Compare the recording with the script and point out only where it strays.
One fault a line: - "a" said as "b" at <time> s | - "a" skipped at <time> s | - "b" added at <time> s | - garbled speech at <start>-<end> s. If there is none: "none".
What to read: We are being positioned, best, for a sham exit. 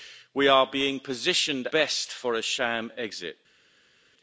none